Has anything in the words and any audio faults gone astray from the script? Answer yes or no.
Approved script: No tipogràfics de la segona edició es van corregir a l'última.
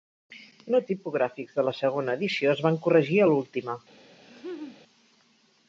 yes